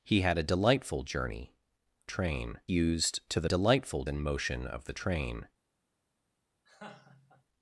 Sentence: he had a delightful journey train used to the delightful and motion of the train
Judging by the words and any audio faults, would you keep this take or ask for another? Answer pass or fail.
fail